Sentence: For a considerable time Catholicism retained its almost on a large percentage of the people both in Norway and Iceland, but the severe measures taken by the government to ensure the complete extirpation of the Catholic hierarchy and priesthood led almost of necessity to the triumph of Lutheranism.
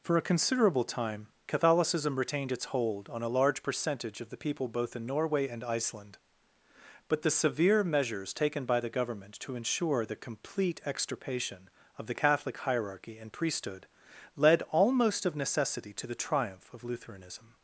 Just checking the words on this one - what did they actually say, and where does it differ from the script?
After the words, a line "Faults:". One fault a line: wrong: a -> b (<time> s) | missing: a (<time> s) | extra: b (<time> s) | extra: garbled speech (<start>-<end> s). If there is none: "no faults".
For a considerable time Catholicism retained its hold on a large percentage of the people both in Norway and Iceland, but the severe measures taken by the government to ensure the complete extirpation of the Catholic hierarchy and priesthood led almost of necessity to the triumph of Lutheranism.
Faults:
wrong: almost -> hold (2.6 s)